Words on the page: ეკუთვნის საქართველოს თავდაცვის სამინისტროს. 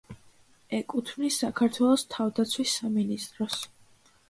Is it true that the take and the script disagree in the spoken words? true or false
false